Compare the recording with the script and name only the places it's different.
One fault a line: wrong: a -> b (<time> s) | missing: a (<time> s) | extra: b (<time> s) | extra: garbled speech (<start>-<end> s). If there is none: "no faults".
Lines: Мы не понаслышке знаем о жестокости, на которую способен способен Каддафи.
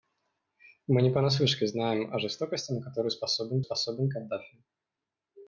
no faults